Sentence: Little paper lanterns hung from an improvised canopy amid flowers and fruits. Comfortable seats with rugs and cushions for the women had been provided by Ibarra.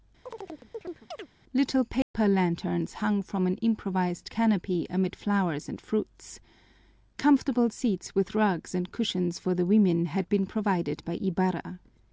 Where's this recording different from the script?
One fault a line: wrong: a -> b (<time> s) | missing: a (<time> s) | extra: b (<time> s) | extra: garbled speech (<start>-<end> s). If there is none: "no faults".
no faults